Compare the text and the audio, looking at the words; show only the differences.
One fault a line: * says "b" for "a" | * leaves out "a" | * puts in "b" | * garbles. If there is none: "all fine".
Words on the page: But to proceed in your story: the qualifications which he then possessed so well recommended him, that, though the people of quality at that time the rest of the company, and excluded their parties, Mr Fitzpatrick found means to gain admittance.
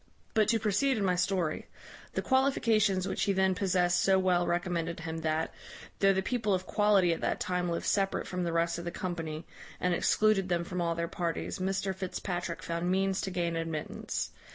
* says "my" for "your"
* puts in "lived separate from"
* puts in "them from all"